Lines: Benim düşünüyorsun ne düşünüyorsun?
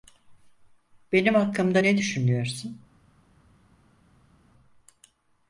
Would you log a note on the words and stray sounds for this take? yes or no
yes